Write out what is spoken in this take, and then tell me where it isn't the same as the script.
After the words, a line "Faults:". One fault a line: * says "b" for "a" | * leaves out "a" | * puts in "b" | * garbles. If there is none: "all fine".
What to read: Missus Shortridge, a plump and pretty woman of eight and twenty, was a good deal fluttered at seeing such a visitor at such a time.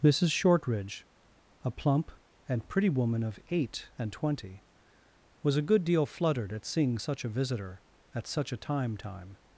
Missus Shortridge, a plump and pretty woman of eight and twenty, was a good deal fluttered at seeing such a visitor at such a time time.
Faults:
* puts in "time"